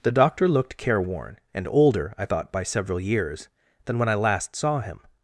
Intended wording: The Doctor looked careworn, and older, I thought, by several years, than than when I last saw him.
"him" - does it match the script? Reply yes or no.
yes